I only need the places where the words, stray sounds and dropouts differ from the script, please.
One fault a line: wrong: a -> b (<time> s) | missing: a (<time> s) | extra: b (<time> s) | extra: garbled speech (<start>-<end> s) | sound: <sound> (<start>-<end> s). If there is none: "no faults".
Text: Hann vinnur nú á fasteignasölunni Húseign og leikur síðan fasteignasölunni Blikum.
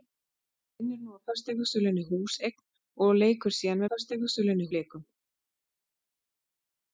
no faults